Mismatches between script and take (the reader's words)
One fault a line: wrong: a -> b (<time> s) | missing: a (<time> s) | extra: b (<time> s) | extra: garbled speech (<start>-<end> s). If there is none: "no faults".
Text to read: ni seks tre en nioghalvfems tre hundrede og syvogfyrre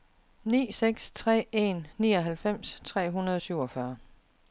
no faults